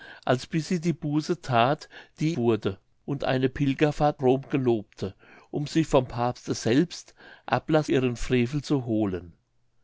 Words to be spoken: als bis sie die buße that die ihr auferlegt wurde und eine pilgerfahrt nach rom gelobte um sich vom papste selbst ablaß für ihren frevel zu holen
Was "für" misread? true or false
true